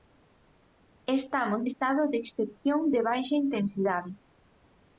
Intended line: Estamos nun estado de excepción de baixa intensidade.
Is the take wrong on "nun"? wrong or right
wrong